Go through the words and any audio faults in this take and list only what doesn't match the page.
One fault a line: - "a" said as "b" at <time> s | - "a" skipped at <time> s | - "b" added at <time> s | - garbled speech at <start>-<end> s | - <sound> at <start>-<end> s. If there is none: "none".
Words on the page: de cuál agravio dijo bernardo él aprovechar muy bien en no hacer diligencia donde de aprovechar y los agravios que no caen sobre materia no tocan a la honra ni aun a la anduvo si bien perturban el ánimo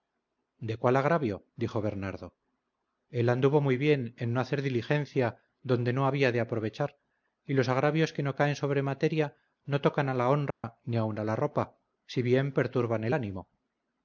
- "aprovechar" said as "anduvo" at 3.3 s
- "no había" added at 5.9 s
- dropout at 10.5-10.6 s
- "anduvo" said as "ropa" at 11.4 s